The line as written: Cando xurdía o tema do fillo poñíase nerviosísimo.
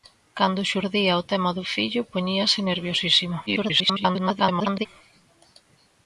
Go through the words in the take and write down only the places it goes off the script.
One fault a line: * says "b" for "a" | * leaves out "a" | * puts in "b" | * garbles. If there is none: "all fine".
* garbles